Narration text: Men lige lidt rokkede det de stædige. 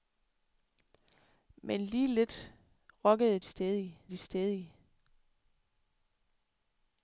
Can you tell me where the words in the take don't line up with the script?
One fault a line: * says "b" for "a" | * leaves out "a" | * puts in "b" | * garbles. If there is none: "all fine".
* says "stædige" for "det"